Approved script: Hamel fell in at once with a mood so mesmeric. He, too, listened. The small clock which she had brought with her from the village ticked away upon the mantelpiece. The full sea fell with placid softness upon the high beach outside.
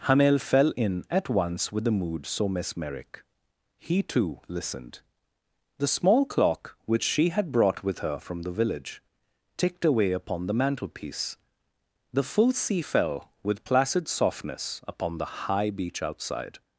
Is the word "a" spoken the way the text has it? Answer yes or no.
no